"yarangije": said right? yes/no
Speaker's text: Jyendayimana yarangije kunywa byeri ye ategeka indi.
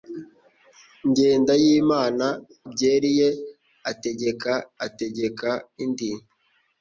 no